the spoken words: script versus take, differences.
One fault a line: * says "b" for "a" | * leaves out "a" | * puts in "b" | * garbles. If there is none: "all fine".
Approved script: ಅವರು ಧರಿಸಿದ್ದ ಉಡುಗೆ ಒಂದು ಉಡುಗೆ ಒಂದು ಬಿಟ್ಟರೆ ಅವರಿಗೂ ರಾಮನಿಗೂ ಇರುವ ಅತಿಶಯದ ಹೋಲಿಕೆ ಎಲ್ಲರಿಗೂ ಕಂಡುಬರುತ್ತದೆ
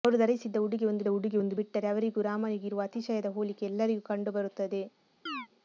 all fine